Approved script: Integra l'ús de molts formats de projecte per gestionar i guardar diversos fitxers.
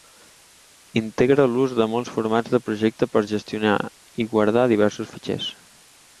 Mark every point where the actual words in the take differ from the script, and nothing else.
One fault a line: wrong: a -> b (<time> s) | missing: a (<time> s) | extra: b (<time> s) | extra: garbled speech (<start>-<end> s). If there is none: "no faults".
no faults